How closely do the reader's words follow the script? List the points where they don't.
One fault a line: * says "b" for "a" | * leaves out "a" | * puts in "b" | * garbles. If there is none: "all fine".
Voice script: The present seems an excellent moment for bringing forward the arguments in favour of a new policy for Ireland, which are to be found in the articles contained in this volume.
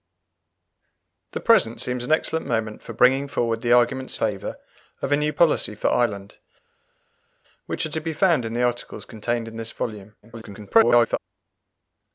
* leaves out "in"
* garbles